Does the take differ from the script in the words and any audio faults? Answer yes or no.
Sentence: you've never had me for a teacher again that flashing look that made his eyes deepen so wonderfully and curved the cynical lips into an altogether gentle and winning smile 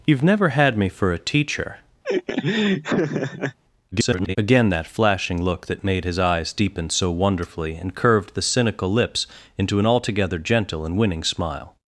yes